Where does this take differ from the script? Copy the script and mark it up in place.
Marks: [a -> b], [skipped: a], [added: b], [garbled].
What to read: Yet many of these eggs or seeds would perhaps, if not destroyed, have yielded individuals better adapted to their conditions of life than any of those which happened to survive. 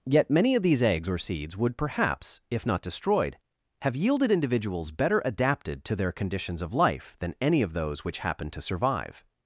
Yet many of these eggs or seeds would perhaps, if not destroyed, have yielded individuals better adapted to their conditions of life than any of those which happened to survive.